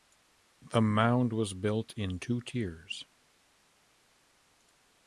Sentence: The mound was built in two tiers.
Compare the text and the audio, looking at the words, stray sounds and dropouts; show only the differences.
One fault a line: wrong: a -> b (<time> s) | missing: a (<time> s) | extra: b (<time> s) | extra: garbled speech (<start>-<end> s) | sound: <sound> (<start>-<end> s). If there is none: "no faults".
no faults